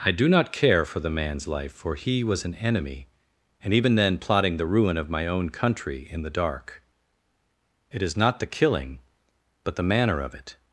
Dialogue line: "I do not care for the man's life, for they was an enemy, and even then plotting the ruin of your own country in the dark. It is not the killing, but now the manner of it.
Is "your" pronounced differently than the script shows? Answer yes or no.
yes